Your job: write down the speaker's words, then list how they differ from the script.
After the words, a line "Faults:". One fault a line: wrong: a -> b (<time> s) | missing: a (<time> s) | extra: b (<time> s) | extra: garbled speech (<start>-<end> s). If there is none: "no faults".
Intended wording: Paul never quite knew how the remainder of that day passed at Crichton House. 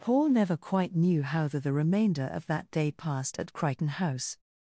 Paul never quite knew how the the remainder of that day passed at Crichton House.
Faults:
extra: the (1.6 s)